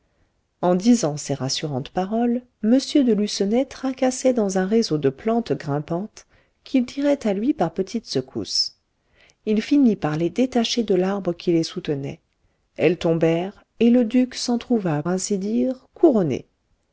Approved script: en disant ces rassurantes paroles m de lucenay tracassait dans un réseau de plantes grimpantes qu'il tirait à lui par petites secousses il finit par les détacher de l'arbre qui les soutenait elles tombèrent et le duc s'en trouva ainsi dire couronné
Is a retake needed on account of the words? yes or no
no